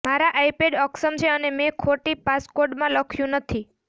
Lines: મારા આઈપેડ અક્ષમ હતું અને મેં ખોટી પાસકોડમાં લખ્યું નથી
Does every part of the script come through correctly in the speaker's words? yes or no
no